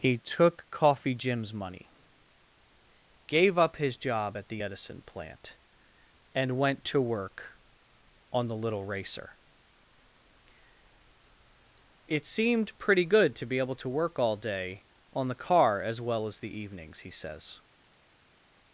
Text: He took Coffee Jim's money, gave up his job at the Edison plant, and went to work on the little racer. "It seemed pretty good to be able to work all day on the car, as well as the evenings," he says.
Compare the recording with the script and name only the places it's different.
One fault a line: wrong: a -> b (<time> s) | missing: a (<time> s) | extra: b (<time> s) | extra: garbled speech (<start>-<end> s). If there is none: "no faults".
no faults